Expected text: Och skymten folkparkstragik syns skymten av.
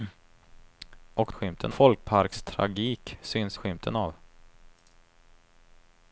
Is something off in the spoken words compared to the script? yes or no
no